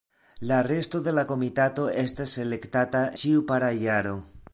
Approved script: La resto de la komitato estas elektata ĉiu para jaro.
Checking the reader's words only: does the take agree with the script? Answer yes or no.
yes